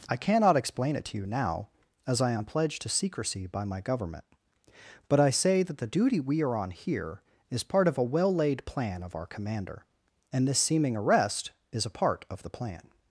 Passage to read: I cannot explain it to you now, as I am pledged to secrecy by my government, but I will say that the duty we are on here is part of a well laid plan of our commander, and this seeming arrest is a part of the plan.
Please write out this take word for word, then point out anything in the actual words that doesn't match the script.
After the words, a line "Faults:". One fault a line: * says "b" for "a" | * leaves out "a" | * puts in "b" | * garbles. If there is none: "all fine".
I cannot explain it to you now, as I am pledged to secrecy by my government, but I say that the duty we are on here is part of a well laid plan of our commander, and this seeming arrest is a part of the plan.
Faults:
* leaves out "will"